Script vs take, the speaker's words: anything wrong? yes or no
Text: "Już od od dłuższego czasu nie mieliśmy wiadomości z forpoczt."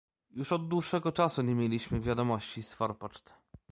yes